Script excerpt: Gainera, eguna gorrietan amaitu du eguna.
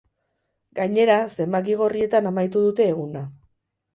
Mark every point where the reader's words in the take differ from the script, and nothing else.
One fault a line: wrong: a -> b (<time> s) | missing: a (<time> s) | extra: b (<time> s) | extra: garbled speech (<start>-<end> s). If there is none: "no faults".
wrong: eguna -> zenbaki (1.4 s)
wrong: du -> dute (2.7 s)